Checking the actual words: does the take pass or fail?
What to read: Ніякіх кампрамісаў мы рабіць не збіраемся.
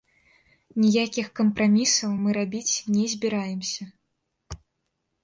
pass